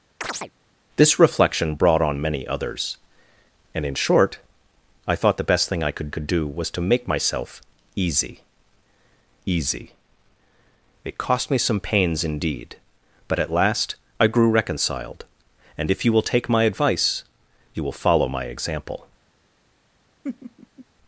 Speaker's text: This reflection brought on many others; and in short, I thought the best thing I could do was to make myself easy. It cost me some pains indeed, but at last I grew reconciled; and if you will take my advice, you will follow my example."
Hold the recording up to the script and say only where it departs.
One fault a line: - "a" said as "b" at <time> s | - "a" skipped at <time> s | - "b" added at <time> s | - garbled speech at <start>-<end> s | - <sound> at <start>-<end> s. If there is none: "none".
- chirp at 0.2-0.5 s
- "could" added at 6.1 s
- "easy" added at 9.4 s
- laugh at 20.2-20.9 s